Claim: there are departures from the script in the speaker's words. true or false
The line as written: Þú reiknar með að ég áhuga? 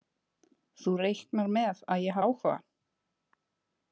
false